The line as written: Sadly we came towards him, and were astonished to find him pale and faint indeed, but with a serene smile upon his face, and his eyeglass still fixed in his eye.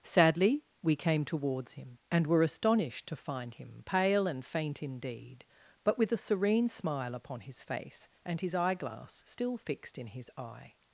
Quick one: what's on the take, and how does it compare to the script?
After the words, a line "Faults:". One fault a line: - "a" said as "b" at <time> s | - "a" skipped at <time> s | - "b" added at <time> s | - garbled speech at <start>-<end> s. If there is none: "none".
Sadly we came towards him, and were astonished to find him pale and faint indeed, but with a serene smile upon his face, and his eyeglass still fixed in his eye.
Faults:
none